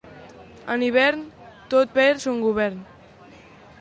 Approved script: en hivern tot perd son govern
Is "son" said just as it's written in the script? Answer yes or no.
yes